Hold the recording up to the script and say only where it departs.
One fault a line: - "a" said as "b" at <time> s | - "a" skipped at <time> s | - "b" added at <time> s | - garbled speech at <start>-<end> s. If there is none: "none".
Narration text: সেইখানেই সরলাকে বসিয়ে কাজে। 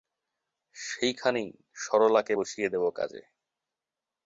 - "দেব" added at 2.7 s